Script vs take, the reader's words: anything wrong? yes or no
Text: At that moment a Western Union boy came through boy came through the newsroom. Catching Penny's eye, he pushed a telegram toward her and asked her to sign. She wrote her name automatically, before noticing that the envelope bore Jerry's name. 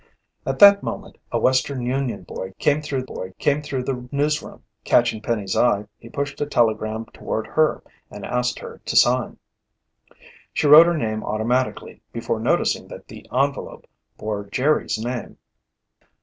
no